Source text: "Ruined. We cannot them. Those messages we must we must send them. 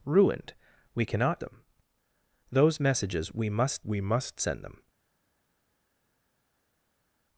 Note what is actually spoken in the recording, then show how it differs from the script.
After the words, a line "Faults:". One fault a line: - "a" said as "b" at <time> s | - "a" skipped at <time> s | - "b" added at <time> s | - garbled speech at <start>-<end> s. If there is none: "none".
"Ruined. We cannot them. Those messages we must we must send them.
Faults:
none